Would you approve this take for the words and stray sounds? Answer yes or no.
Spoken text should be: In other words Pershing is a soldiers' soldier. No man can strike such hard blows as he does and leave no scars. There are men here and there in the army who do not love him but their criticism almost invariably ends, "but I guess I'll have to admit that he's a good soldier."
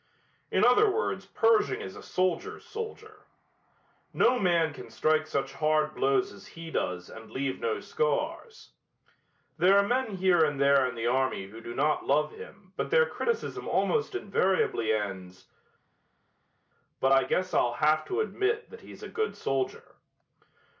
yes